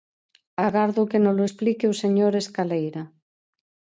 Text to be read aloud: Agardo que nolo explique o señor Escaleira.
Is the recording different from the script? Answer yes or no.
no